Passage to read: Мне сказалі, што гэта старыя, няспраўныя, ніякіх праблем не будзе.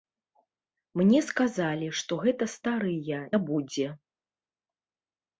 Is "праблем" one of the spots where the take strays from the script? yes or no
yes